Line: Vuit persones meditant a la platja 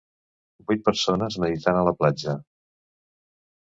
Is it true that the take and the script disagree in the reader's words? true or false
false